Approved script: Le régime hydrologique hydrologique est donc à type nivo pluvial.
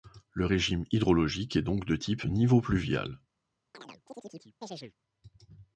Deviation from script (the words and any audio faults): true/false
true